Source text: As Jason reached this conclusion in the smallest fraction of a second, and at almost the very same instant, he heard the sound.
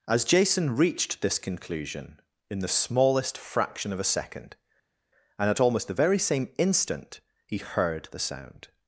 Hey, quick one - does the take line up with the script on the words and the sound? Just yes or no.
yes